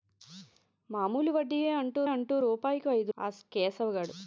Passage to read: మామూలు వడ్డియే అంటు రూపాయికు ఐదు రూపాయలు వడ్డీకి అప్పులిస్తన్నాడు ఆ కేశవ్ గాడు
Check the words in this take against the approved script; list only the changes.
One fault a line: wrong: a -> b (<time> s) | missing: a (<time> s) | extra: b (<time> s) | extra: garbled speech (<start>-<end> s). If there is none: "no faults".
extra: అంటు (2.1 s)
missing: రూపాయలు వడ్డీకి అప్పులిస్తన్నాడు (3.1 s)